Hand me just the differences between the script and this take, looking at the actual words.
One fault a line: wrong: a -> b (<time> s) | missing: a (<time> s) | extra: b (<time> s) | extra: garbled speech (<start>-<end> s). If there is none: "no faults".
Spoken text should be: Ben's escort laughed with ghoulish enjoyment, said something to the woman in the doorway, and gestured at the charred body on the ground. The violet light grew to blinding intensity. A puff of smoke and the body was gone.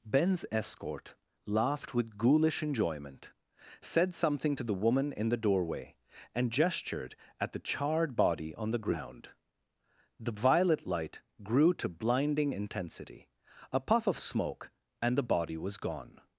no faults